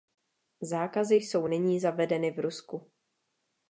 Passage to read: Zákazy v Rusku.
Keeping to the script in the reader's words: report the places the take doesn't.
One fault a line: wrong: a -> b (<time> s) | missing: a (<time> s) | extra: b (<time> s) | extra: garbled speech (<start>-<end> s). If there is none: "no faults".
extra: jsou nyní zavedeny (1.1 s)